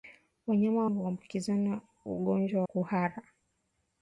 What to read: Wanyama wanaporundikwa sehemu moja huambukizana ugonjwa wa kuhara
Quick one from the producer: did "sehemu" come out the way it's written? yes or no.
no